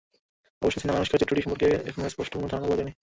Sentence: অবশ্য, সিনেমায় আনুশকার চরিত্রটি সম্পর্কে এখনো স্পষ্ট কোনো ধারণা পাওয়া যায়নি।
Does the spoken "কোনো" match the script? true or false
true